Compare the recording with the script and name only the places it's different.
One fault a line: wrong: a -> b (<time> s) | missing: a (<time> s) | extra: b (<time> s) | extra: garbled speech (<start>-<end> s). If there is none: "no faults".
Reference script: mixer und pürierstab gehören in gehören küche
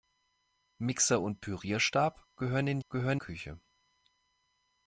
no faults